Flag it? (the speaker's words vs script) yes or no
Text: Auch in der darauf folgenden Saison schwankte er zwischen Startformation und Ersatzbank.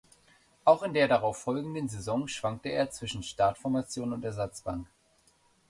no